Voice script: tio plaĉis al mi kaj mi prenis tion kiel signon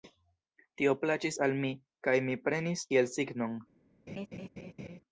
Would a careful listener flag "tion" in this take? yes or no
yes